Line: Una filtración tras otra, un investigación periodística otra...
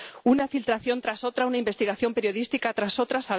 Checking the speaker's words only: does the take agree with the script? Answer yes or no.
no